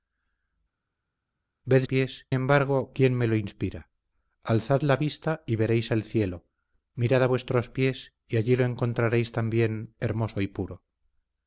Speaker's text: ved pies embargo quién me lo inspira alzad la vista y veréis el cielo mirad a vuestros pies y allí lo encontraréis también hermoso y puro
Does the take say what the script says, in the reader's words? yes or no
yes